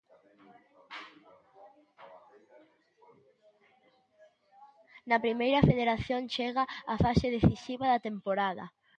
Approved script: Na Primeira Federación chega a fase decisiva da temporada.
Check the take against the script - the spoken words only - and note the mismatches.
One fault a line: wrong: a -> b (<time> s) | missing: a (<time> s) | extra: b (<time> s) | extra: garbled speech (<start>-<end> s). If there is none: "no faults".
no faults